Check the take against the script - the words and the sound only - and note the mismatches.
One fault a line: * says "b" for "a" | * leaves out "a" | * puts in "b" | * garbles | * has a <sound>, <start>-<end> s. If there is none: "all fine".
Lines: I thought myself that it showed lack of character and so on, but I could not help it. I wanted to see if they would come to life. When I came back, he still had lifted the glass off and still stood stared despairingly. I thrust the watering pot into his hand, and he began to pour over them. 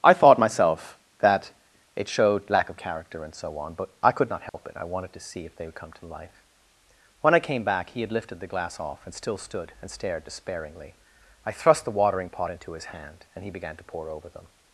* has a dropout, 4.5-4.5 s
* leaves out "still"
* puts in "and"